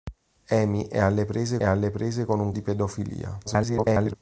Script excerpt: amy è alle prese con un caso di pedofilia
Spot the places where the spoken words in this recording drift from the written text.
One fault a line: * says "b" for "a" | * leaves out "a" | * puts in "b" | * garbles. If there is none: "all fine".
* puts in "alle prese"
* leaves out "caso"
* garbles